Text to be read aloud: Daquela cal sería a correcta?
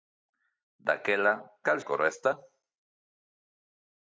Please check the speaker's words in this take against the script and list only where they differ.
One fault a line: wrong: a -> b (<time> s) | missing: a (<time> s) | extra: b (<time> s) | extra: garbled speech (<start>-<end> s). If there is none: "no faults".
missing: sería (1.8 s)